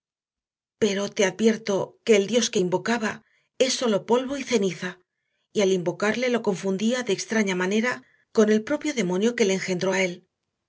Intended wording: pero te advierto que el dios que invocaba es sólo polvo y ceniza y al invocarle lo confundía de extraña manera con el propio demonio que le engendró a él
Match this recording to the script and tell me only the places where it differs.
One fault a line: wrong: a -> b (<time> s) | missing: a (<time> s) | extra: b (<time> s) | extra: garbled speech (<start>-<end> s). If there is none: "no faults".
no faults